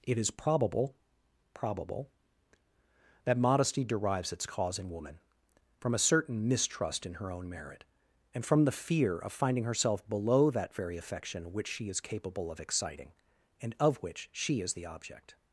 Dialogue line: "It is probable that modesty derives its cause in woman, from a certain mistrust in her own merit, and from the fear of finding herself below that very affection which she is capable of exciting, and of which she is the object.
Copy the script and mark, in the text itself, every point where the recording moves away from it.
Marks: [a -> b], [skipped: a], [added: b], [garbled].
"It is probable [added: probable] that modesty derives its cause in woman, from a certain mistrust in her own merit, and from the fear of finding herself below that very affection which she is capable of exciting, and of which she is the object.